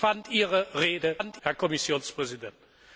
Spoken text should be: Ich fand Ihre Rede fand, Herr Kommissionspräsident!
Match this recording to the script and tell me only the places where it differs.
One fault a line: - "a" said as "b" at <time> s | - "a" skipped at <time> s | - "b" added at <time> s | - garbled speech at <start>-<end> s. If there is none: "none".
none